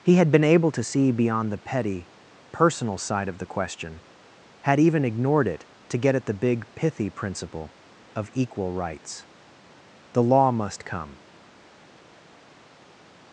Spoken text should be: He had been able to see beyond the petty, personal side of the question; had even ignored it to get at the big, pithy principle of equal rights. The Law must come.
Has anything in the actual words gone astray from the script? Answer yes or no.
no